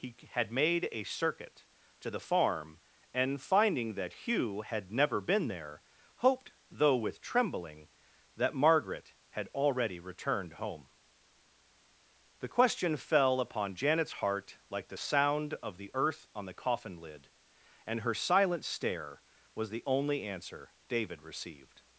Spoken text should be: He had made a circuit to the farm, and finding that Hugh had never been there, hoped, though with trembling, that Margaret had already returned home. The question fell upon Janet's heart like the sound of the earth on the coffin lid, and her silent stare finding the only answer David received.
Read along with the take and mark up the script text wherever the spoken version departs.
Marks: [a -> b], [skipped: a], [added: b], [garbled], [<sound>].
He had made a circuit to the farm, and finding that Hugh had never been there, hoped, though with trembling, that Margaret had already returned home. The question fell upon Janet's heart like the sound of the earth on the coffin lid, and her silent stare [finding -> was] the only answer David received.